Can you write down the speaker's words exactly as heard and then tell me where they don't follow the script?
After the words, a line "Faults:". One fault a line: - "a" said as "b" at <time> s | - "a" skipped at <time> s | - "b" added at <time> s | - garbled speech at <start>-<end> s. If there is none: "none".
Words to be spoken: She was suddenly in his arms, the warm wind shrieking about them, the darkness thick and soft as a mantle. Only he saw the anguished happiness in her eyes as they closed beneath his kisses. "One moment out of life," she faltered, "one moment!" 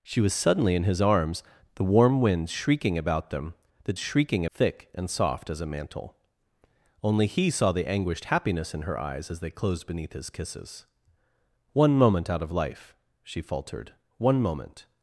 She was suddenly in his arms, the warm wind shrieking about them, the shrieking thick and soft as a mantle. Only he saw the anguished happiness in her eyes as they closed beneath his kisses. "One moment out of life," she faltered, "one moment!"
Faults:
- "darkness" said as "shrieking" at 4.0 s